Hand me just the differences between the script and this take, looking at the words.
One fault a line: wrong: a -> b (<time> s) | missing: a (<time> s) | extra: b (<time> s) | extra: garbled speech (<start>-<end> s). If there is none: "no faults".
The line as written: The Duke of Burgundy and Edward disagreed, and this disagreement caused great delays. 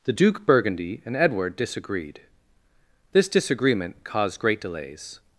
missing: of (0.5 s)
missing: and (2.2 s)